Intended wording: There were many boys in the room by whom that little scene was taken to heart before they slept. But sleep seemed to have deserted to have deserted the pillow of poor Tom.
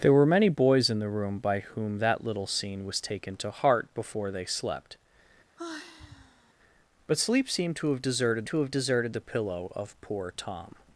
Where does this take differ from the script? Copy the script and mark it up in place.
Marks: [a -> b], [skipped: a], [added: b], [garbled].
There were many boys in the room by whom that little scene was taken to heart before they slept. But sleep seemed to have deserted to have deserted the pillow of poor Tom.